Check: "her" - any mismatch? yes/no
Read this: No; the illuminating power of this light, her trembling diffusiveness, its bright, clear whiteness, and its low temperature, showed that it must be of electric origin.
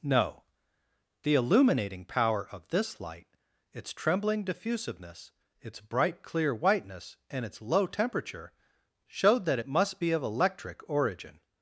yes